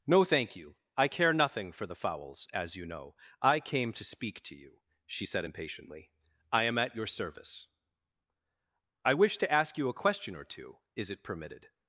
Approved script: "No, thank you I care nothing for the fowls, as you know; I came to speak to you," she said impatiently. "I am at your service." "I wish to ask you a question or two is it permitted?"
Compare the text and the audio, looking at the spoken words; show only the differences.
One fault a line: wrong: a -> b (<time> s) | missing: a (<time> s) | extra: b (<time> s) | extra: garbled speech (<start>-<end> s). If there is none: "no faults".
no faults